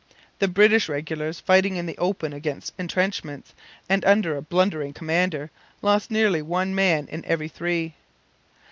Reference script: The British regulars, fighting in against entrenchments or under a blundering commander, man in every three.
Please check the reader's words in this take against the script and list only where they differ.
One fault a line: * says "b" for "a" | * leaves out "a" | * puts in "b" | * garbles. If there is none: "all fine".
* puts in "the open"
* says "and" for "or"
* puts in "lost nearly one"